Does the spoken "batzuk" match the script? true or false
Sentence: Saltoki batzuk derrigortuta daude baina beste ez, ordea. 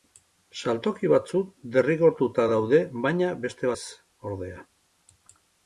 true